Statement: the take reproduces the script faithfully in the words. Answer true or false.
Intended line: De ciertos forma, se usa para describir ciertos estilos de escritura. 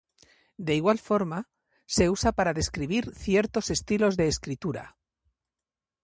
false